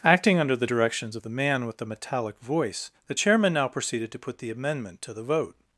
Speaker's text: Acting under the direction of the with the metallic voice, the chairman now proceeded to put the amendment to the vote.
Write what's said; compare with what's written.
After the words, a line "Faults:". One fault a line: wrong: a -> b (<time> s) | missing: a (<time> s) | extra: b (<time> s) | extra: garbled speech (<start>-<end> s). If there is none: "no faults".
Acting under the directions of the man with the metallic voice, the chairman now proceeded to put the amendment to the vote.
Faults:
wrong: direction -> directions (0.6 s)
extra: man (1.3 s)